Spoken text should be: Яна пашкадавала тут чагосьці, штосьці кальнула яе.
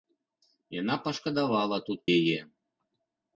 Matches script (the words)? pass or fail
fail